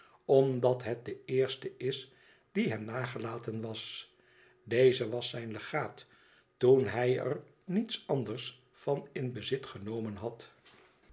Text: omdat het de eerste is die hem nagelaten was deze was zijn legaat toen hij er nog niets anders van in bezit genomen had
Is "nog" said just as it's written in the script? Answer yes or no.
no